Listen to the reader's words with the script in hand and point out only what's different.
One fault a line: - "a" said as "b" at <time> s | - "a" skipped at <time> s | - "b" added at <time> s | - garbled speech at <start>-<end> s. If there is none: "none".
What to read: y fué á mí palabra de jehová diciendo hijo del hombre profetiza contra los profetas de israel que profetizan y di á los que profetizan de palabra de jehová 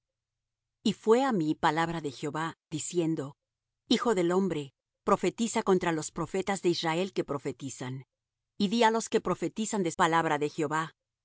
none